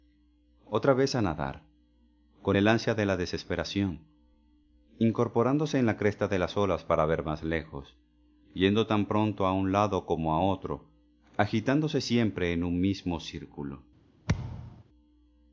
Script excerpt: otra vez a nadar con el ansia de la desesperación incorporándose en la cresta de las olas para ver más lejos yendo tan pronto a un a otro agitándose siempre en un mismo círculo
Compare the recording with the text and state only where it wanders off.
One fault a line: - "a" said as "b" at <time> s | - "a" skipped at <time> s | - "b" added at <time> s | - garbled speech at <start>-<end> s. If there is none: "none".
- "lado como" added at 9.7 s